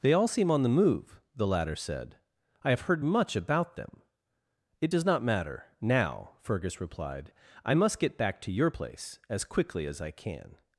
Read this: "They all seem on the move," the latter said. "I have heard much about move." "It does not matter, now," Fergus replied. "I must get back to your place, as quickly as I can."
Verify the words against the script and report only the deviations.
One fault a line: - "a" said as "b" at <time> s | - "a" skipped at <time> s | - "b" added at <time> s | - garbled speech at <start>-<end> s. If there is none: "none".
- "move" said as "them" at 3.8 s